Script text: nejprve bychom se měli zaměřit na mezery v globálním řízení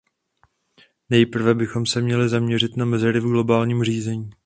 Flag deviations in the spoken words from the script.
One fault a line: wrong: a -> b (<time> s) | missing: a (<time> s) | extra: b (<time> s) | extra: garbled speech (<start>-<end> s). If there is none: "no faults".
no faults